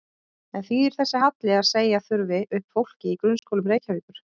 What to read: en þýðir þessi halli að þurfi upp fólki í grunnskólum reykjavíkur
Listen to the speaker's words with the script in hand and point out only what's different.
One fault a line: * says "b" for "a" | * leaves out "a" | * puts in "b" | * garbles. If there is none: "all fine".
* puts in "segja"